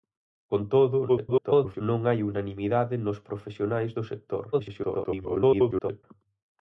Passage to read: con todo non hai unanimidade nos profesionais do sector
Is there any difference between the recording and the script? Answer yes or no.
yes